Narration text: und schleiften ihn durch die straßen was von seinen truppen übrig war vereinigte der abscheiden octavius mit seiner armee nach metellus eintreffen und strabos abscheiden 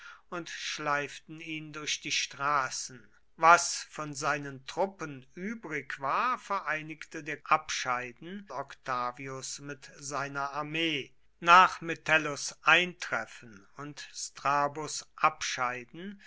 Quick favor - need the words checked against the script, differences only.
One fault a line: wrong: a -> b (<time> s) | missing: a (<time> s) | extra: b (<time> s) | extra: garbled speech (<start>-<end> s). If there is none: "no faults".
no faults